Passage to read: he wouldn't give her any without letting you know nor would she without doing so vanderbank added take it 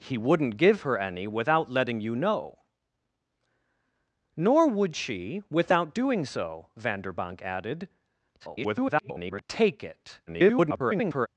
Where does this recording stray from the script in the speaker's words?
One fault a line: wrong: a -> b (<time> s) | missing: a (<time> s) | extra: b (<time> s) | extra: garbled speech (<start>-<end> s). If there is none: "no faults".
extra: garbled speech (8.4-9.4 s)
extra: garbled speech (10.3-11.3 s)